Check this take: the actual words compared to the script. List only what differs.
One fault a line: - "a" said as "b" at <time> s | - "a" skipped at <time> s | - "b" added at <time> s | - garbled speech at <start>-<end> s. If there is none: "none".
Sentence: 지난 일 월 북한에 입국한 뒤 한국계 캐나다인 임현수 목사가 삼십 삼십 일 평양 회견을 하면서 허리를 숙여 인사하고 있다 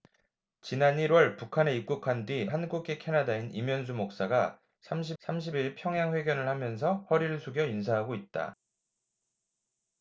none